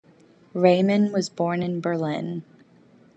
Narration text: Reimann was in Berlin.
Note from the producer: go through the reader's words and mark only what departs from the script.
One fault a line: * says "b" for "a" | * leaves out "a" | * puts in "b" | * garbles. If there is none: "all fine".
* puts in "born"